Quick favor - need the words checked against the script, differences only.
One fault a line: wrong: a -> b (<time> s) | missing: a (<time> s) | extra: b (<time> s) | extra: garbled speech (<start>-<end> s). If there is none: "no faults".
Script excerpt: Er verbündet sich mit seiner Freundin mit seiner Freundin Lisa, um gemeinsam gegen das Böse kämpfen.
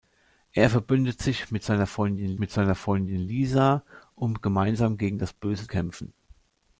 no faults